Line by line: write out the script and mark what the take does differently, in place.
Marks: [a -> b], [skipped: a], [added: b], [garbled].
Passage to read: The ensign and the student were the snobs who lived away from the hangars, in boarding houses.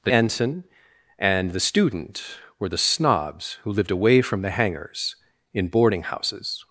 The ensign and the student were the snobs who lived away from the hangars, in boarding houses.